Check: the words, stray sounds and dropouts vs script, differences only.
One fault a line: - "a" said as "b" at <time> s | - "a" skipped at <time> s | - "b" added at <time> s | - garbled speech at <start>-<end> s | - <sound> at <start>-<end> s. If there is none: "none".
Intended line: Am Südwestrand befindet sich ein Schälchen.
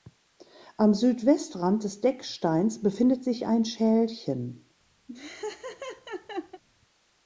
- "des Decksteins" added at 1.8 s
- laugh at 5.1-6.6 s